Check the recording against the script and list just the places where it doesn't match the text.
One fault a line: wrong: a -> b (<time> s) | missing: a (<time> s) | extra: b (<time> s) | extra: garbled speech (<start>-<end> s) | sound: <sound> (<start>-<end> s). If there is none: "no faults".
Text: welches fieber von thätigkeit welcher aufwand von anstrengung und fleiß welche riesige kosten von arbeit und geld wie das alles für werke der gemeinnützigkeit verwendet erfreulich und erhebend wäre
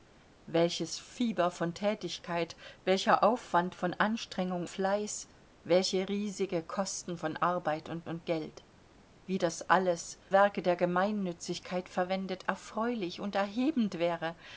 missing: und (4.7 s)
extra: und (8.1 s)
missing: für (10.2 s)